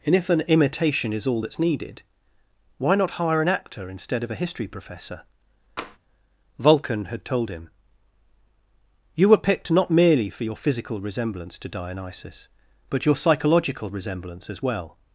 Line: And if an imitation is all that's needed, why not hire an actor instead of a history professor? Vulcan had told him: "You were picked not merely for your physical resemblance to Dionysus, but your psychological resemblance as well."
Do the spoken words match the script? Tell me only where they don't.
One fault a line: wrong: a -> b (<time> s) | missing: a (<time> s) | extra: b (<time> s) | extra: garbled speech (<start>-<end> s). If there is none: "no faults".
no faults